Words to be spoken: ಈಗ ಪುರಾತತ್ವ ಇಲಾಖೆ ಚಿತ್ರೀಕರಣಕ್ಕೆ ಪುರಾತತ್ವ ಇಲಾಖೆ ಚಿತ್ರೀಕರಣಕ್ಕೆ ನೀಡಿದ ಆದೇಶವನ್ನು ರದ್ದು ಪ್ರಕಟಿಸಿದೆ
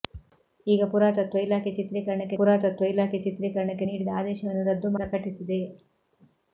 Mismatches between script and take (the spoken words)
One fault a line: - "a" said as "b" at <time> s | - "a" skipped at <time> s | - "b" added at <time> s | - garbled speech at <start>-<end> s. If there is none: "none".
none